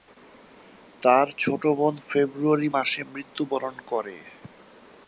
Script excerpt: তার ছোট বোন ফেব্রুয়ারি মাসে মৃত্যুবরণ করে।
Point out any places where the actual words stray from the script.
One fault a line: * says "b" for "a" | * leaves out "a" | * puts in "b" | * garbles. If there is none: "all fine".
all fine